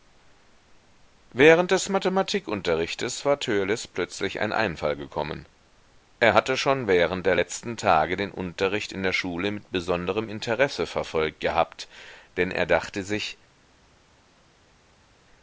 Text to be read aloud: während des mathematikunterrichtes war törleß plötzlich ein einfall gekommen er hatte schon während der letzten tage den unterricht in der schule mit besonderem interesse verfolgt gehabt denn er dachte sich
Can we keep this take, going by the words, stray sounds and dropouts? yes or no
yes